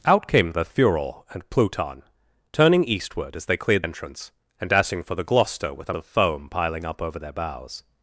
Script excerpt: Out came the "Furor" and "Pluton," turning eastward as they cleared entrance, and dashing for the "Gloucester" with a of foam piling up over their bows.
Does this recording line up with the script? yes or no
yes